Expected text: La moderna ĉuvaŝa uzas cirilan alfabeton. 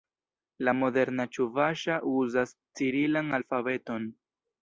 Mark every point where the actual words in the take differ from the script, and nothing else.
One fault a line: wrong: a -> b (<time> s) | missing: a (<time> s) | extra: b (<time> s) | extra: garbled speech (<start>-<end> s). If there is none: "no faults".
no faults